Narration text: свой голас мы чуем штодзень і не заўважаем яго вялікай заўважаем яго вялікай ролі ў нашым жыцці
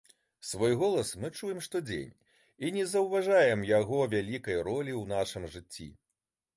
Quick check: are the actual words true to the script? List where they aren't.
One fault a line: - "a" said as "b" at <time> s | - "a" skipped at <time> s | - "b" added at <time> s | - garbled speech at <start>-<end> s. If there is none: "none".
- "заўважаем яго вялікай" skipped at 4.6 s